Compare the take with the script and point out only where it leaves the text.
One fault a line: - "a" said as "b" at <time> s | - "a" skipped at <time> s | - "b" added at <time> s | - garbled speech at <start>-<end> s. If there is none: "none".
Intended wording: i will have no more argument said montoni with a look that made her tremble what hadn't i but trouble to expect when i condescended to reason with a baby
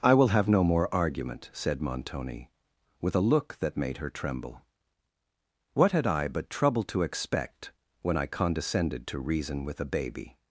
- "hadn't" said as "had" at 5.9 s